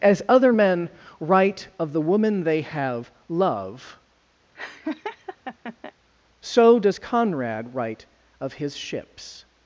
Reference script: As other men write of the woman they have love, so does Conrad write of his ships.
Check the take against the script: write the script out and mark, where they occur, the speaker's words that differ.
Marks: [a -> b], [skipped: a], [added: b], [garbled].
As other men write of the woman they have love, so does Conrad write of his ships.